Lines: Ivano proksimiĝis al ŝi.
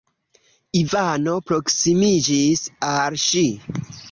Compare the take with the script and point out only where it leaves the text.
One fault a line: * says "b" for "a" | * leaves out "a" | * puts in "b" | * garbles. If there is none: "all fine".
all fine